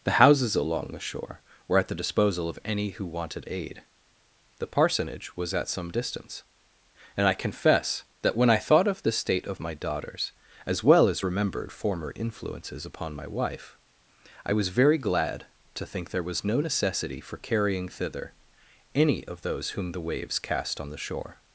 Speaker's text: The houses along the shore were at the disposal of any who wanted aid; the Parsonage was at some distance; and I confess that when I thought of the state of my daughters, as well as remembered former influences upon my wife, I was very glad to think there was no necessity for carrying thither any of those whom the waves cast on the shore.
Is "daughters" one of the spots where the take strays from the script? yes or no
no